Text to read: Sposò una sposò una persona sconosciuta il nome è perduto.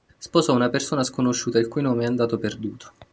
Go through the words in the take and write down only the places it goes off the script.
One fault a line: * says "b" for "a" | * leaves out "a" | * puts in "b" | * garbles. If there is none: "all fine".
* leaves out "sposò una"
* puts in "cui"
* puts in "andato"